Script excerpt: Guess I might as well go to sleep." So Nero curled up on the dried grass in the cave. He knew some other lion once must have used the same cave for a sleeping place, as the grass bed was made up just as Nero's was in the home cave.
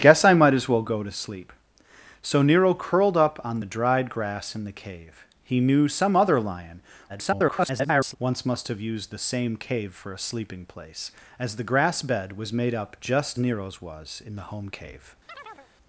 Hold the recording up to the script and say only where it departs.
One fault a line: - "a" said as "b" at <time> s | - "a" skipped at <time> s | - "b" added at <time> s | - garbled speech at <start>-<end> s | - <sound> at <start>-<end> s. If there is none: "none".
- garbled speech at 7.1-8.2 s
- "as" skipped at 13.4 s
- chirp at 15.3-15.7 s